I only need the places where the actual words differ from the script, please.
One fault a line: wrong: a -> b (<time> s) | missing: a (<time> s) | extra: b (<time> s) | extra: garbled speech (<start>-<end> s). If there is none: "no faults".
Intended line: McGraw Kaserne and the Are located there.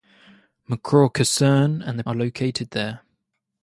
no faults